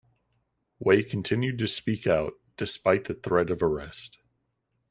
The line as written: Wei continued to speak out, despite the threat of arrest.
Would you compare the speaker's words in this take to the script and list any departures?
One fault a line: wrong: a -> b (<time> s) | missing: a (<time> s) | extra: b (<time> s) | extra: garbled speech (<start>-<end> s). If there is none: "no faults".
no faults